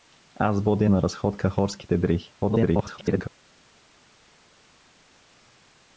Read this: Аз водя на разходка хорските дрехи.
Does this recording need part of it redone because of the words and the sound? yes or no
yes